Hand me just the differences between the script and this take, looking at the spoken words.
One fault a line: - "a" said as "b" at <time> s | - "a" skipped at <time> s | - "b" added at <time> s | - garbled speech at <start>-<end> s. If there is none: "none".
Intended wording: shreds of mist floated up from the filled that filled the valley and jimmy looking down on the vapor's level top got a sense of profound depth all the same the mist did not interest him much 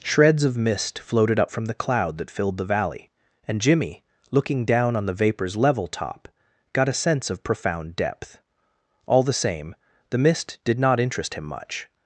- "filled" said as "cloud" at 1.7 s